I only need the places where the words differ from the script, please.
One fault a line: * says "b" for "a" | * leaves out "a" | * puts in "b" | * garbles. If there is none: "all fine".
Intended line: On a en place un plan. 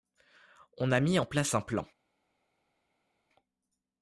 * puts in "mis"